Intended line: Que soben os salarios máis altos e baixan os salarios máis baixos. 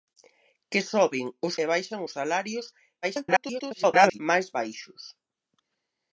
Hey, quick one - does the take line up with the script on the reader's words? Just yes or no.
no